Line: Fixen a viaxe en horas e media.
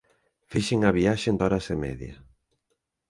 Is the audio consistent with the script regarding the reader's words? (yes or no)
yes